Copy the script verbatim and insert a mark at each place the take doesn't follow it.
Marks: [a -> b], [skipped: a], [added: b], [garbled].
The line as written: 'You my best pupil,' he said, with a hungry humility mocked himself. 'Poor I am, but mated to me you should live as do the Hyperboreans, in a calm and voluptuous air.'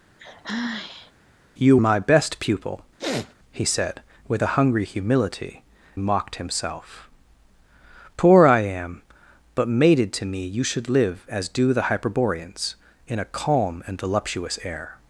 'You my best pupil,' he said, with a hungry humility mocked himself. 'Poor I am, but mated to me you should live as do the Hyperboreans, in a calm and voluptuous air.'